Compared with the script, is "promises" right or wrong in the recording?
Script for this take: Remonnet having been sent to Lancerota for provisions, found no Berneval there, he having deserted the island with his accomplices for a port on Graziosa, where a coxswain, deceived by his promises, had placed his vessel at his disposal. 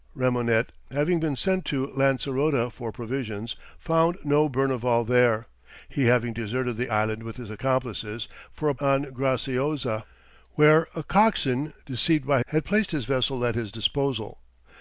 wrong